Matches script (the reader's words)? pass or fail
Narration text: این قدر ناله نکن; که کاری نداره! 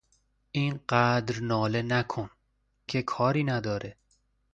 pass